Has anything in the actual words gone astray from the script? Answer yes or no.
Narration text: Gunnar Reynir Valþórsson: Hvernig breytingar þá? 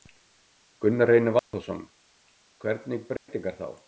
no